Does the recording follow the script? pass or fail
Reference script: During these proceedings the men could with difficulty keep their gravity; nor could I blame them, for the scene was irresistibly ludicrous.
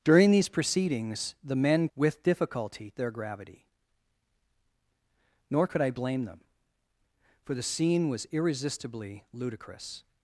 fail